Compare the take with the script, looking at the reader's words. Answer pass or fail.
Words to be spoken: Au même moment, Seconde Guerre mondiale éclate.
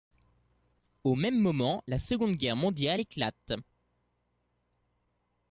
fail